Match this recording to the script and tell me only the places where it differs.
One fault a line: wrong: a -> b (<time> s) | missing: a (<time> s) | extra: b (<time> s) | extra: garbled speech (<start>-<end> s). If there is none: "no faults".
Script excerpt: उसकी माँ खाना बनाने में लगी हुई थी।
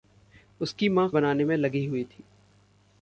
missing: खाना (1.1 s)